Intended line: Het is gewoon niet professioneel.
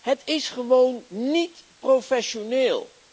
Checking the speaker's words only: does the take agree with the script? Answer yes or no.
yes